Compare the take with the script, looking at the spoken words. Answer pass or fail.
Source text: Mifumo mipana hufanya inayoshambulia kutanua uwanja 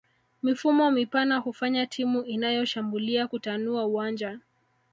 fail